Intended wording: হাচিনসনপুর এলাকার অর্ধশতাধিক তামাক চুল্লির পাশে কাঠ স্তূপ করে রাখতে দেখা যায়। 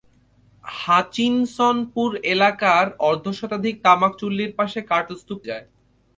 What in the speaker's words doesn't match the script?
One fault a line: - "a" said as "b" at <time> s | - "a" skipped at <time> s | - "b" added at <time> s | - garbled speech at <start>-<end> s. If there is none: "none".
- "করে রাখতে দেখা" skipped at 5.4 s